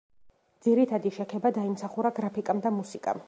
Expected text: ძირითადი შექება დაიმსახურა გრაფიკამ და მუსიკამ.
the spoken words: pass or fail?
pass